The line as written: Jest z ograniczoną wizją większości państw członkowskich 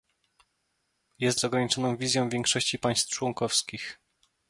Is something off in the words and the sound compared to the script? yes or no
no